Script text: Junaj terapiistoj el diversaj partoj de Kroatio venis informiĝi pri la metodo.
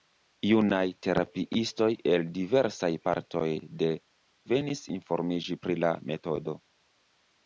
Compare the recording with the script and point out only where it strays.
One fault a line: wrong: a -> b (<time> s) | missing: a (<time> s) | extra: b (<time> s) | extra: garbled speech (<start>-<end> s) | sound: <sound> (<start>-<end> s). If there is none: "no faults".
missing: Kroatio (3.9 s)